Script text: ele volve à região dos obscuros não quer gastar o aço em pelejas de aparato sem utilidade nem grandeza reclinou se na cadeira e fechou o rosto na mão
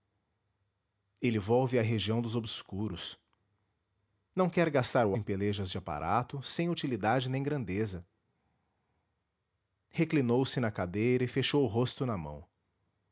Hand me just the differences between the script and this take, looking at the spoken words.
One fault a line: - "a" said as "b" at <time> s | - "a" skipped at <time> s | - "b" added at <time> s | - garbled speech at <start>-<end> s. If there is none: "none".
- "aço" skipped at 5.2 s